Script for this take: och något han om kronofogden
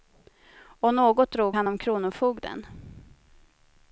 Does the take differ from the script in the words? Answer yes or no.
yes